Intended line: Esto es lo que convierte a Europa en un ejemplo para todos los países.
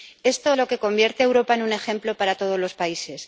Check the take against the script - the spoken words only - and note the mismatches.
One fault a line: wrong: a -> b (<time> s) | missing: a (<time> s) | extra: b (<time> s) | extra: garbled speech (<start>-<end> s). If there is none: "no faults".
missing: es (0.6 s)